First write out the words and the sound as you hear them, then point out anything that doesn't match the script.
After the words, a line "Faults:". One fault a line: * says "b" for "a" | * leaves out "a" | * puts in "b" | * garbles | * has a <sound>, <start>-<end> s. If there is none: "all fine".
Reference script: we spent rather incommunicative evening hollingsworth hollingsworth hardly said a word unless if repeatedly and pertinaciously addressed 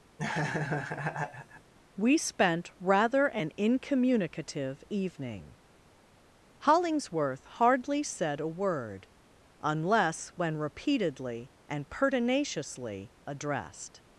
we spent rather an incommunicative evening hollingsworth hardly said a word unless when repeatedly and pertinaciously addressed
Faults:
* has a laugh, 0.2-1.7 s
* puts in "an"
* leaves out "hollingsworth"
* says "when" for "if"